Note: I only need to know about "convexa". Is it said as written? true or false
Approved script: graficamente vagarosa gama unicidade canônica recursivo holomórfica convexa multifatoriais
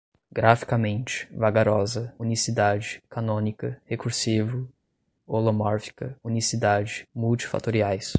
false